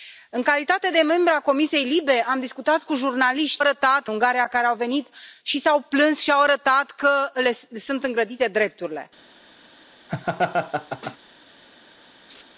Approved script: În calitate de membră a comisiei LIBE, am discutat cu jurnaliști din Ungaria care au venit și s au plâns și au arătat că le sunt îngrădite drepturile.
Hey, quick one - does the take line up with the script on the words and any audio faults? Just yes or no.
no